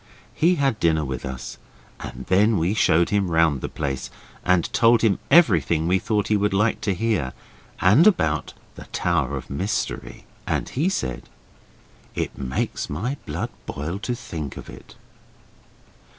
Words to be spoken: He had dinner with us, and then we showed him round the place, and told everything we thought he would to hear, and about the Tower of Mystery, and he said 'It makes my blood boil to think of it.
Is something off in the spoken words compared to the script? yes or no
yes